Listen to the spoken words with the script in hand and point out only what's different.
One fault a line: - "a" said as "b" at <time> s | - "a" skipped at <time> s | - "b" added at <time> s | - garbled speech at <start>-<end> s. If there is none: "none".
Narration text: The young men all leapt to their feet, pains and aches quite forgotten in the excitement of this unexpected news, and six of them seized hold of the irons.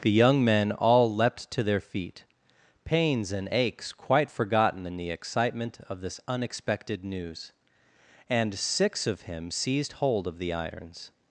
- "them" said as "him" at 9.2 s